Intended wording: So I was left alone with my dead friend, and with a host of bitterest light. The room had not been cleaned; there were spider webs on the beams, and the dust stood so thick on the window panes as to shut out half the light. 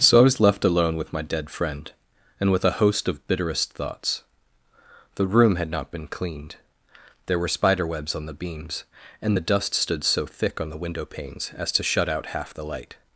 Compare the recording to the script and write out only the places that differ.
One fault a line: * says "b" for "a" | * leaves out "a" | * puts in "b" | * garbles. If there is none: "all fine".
* says "thoughts" for "light"